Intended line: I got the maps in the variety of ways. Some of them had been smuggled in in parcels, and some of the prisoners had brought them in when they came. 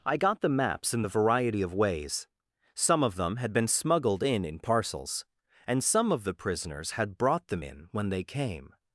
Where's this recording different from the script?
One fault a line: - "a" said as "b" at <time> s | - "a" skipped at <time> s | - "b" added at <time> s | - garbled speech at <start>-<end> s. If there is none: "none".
none